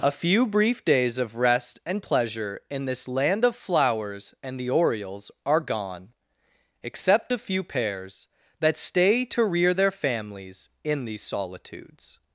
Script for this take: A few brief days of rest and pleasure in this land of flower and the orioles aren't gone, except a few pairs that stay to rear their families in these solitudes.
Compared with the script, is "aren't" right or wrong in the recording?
wrong